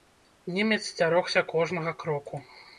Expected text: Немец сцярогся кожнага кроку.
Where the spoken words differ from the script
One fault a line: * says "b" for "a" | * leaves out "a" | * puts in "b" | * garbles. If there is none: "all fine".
all fine